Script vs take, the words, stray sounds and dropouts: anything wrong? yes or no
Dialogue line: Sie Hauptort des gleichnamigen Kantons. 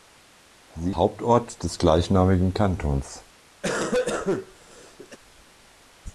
yes